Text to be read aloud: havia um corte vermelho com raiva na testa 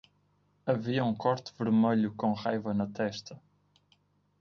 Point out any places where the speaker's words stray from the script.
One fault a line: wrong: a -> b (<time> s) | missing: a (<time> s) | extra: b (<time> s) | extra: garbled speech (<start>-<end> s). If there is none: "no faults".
no faults